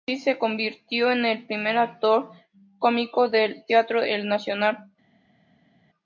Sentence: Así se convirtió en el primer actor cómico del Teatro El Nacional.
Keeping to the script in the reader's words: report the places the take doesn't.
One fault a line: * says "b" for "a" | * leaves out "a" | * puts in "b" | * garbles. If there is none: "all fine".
all fine